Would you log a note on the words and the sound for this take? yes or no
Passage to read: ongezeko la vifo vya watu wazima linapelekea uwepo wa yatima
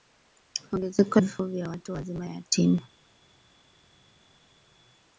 yes